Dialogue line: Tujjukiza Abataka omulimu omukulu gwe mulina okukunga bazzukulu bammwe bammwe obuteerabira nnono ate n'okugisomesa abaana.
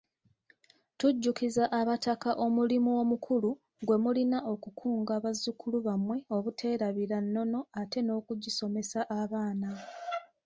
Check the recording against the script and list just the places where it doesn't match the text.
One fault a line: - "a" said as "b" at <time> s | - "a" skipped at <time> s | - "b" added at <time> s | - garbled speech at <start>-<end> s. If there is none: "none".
- "bammwe" skipped at 6.2 s